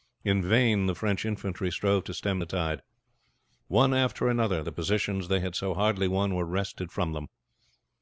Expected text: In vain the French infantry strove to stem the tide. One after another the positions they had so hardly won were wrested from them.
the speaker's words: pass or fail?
pass